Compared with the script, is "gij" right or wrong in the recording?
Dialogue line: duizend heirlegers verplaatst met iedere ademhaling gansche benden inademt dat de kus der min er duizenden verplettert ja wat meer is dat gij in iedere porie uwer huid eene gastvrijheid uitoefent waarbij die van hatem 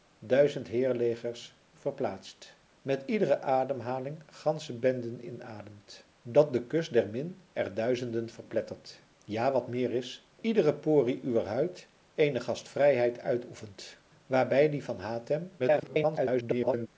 wrong